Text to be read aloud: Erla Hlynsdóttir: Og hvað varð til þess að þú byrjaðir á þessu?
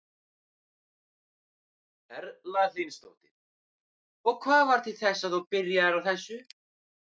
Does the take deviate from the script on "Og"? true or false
false